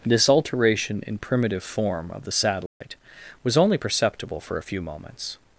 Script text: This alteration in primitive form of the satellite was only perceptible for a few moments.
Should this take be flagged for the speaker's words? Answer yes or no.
no